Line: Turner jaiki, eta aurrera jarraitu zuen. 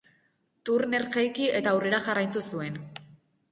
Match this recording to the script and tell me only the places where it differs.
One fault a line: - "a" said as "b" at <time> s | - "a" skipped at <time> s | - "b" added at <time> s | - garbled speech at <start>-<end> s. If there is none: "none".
none